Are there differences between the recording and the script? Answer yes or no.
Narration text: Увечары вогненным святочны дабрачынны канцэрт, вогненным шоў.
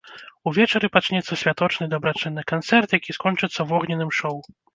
yes